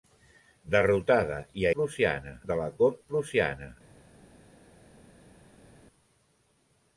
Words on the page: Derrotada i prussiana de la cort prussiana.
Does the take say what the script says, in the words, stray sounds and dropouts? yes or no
yes